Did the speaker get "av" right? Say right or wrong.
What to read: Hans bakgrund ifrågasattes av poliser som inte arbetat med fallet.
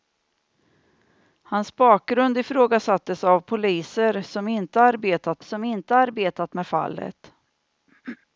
right